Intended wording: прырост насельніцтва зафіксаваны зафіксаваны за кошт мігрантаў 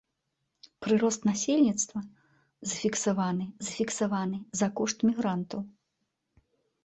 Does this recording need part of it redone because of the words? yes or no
no